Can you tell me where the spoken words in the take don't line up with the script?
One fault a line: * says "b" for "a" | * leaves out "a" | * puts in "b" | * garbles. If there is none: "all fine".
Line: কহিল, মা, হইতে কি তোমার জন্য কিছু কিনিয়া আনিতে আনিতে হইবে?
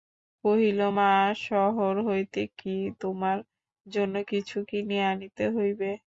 * puts in "শহর"
* leaves out "আনিতে"